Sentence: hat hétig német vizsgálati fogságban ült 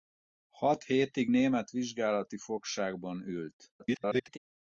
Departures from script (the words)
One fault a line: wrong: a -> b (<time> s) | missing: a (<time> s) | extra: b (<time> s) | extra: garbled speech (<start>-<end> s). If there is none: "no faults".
extra: garbled speech (3.8-4.4 s)